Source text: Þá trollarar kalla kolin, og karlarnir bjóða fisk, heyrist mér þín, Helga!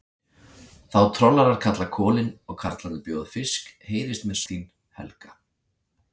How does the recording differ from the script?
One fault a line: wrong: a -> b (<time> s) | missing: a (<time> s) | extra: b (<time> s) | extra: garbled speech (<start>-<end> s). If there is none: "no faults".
no faults